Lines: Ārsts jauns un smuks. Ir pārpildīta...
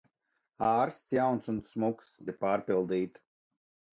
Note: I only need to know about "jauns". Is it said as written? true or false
true